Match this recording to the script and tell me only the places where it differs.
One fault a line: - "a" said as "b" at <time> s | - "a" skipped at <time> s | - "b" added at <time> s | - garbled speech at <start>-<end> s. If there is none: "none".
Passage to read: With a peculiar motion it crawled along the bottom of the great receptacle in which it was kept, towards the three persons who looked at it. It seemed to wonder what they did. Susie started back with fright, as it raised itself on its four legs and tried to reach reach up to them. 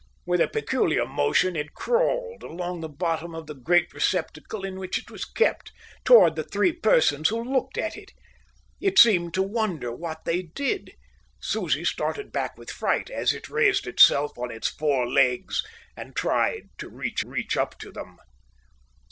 none